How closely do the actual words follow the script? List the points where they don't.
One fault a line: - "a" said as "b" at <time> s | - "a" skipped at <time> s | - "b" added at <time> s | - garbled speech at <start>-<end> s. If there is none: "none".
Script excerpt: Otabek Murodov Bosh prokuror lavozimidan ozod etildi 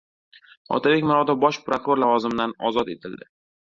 none